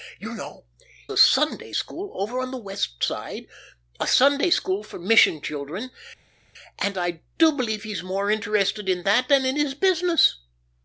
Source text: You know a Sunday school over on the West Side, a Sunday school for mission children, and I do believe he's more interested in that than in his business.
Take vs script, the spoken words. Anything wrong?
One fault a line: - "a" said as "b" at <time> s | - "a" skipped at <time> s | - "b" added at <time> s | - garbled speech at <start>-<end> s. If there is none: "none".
none